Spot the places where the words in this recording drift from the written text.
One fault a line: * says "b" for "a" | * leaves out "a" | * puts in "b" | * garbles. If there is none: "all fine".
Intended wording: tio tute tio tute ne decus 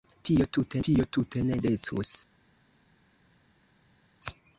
all fine